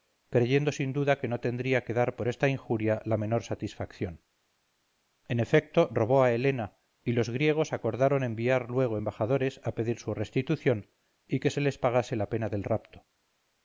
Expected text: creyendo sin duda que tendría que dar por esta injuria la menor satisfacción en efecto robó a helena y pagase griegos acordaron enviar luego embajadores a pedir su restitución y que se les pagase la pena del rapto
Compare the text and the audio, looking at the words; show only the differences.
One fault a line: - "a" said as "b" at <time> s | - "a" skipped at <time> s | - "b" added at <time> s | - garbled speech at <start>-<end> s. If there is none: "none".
- "no" added at 1.3 s
- "pagase" said as "los" at 7.1 s